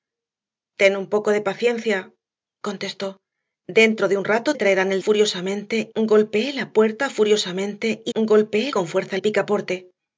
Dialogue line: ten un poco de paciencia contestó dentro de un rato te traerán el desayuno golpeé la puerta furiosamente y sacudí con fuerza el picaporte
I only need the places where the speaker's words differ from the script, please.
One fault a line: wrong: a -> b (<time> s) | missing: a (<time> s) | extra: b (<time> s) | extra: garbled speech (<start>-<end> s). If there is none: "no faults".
missing: te (4.5 s)
wrong: desayuno -> furiosamente (5.0 s)
wrong: sacudí -> golpeé (8.2 s)